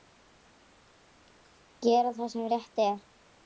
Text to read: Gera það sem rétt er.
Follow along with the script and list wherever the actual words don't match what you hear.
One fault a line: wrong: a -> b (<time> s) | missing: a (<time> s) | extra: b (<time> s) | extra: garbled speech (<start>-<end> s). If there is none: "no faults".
no faults